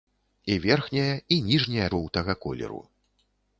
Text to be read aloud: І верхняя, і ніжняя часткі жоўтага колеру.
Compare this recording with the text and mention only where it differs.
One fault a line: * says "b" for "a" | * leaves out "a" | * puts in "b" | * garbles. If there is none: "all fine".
* leaves out "часткі"